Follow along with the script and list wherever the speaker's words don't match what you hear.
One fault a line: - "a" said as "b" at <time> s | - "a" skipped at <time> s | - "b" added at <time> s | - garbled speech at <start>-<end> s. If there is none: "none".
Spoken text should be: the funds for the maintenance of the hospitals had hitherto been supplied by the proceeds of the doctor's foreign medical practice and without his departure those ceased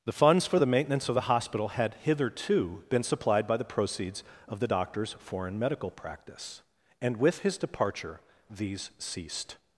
- "hospitals" said as "hospital" at 1.2 s
- "without" said as "with" at 7.2 s
- "those" said as "these" at 8.5 s